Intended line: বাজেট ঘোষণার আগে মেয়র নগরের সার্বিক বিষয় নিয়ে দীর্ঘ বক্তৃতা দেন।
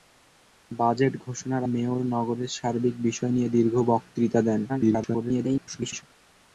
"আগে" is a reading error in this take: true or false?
true